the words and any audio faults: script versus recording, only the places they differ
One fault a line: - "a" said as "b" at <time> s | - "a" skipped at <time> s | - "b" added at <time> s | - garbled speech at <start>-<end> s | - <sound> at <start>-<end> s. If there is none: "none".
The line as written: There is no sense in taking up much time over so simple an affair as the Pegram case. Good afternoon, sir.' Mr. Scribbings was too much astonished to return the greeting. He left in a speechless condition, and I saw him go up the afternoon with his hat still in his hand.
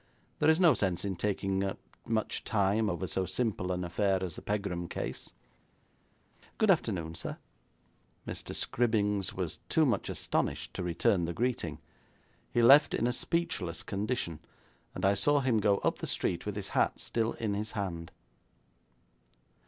- "afternoon" said as "street" at 16.1 s